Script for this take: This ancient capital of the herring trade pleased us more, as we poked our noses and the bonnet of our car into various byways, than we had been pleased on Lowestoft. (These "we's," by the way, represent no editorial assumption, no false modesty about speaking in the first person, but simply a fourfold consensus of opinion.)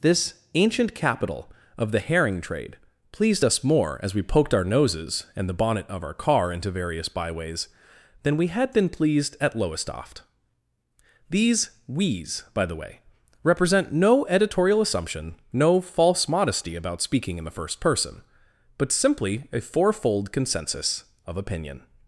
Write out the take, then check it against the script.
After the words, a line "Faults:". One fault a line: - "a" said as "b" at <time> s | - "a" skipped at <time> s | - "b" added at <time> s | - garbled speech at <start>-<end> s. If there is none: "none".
This ancient capital of the herring trade pleased us more, as we poked our noses and the bonnet of our car into various byways, than we had been pleased at Lowestoft. (These "we's," by the way, represent no editorial assumption, no false modesty about speaking in the first person, but simply a fourfold consensus of opinion.)
Faults:
- "on" said as "at" at 9.4 s